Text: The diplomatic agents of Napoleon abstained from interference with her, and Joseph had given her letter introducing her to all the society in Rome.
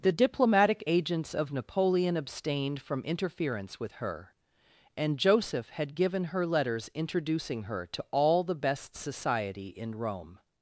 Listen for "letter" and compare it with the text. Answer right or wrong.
wrong